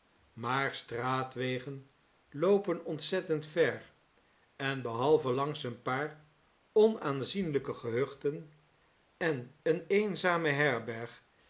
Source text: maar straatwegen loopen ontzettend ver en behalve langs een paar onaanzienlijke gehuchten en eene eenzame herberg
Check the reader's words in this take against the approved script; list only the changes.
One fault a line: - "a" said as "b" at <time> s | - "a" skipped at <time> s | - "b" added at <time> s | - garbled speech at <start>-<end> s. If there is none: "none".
none